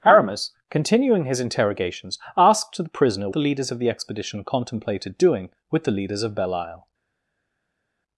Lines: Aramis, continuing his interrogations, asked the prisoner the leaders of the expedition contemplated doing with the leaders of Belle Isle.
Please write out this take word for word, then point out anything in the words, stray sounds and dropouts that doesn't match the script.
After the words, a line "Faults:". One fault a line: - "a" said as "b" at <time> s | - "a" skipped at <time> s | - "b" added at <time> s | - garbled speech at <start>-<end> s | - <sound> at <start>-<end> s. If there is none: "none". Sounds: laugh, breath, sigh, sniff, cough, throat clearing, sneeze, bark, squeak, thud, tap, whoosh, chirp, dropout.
Aramis, continuing his interrogations, asked the prisoner the leaders of the expedition contemplated doing with the leaders of Belle Isle.
Faults:
none